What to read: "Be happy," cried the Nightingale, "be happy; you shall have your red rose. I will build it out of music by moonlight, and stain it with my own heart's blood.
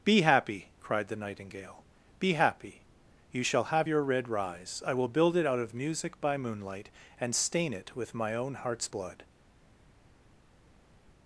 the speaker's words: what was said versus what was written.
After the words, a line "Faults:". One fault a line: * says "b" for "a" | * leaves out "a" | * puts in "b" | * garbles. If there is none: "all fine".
"Be happy," cried the Nightingale, "be happy; you shall have your red rise. I will build it out of music by moonlight, and stain it with my own heart's blood.
Faults:
* says "rise" for "rose"